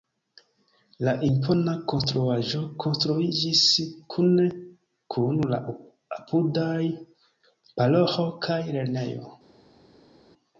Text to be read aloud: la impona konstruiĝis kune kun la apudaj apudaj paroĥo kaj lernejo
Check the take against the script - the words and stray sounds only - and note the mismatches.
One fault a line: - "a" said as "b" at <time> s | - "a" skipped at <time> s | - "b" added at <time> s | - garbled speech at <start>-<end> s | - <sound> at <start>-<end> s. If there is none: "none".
- "konstruaĵo" added at 1.9 s
- "apudaj" skipped at 6.8 s